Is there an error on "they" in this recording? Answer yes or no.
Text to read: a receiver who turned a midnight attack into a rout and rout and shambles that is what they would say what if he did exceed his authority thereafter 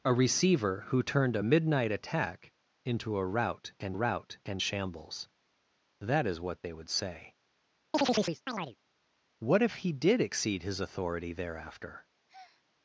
no